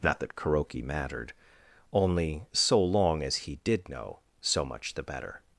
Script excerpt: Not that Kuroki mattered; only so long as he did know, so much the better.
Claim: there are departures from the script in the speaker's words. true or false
false